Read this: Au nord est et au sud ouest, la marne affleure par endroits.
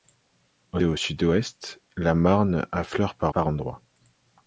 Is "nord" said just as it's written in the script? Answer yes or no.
no